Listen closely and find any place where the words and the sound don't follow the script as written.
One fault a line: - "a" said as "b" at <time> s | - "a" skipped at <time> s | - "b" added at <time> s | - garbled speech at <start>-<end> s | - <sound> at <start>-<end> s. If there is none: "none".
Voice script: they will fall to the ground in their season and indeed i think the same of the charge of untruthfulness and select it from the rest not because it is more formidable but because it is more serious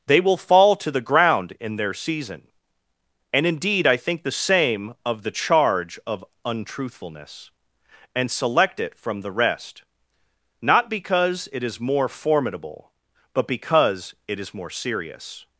none